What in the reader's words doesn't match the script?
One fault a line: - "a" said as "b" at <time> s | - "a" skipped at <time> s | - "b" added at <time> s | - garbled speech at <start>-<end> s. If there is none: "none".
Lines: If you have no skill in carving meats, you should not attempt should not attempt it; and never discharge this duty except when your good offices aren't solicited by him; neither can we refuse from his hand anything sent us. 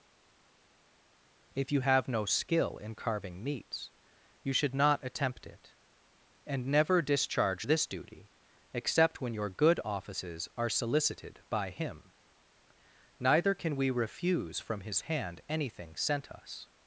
- "should not attempt" skipped at 5.5 s
- "aren't" said as "are" at 10.6 s